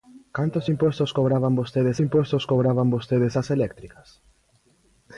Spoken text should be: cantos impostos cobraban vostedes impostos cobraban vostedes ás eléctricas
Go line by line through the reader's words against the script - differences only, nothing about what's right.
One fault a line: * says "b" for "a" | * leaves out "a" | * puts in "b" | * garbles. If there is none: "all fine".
all fine